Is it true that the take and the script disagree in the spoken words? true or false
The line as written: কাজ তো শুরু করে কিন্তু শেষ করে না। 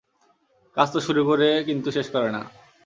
false